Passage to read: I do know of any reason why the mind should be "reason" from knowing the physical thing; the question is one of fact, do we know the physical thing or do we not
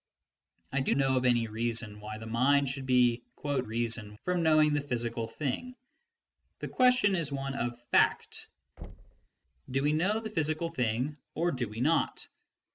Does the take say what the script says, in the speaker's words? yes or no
yes